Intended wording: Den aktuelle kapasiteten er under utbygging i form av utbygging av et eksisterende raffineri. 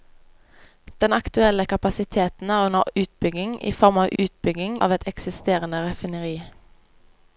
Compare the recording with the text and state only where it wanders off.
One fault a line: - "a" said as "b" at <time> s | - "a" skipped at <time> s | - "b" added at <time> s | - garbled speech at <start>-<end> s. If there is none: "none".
none